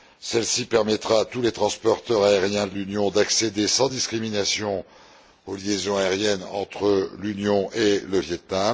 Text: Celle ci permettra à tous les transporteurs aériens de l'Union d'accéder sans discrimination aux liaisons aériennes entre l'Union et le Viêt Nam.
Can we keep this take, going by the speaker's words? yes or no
yes